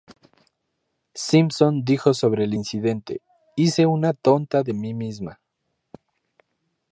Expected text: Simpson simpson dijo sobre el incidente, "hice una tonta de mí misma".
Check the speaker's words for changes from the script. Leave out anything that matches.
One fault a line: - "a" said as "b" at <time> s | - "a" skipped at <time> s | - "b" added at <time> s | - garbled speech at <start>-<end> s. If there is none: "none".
- "simpson" skipped at 1.8 s